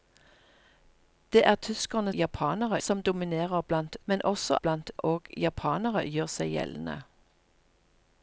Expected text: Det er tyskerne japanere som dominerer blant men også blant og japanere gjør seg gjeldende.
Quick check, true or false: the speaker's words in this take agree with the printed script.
true